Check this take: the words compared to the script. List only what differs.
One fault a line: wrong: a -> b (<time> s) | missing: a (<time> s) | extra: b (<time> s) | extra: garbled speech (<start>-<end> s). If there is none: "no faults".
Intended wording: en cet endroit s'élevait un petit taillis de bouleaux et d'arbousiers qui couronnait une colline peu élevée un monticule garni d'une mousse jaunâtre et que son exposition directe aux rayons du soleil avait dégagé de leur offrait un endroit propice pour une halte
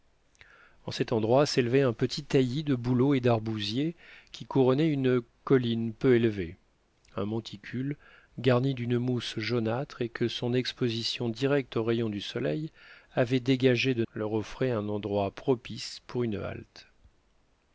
no faults